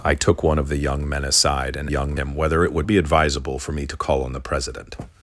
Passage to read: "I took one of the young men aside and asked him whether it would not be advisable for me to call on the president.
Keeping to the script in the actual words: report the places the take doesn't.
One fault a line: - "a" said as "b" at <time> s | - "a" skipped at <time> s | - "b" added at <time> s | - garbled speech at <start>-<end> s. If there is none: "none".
- "asked" said as "young" at 1.9 s
- "not" skipped at 2.9 s